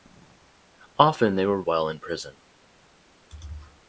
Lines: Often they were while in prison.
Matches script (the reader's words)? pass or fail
pass